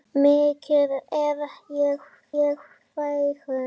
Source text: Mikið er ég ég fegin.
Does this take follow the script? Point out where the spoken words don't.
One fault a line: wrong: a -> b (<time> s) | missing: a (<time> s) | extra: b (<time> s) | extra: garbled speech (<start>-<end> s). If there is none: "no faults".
no faults